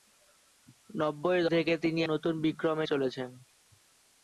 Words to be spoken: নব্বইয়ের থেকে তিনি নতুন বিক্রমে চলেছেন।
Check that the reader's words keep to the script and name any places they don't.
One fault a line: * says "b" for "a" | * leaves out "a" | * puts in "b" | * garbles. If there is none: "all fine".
all fine